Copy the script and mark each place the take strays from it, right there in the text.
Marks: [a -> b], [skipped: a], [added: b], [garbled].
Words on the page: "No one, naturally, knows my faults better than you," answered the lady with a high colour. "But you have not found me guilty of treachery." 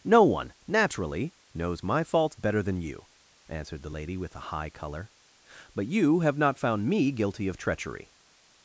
"No one, naturally, knows my faults better than you," answered the lady with a high colour. "But you have not found me guilty of treachery."